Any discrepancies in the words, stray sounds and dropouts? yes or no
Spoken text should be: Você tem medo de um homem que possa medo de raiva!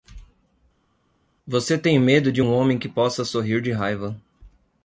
yes